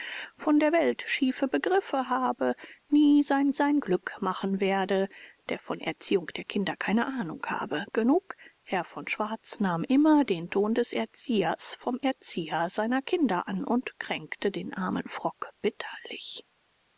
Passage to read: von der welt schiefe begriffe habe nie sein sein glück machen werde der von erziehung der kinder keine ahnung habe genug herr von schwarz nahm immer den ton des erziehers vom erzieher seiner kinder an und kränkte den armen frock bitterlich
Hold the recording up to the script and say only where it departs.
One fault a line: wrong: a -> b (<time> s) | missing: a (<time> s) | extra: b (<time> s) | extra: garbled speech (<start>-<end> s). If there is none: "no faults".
no faults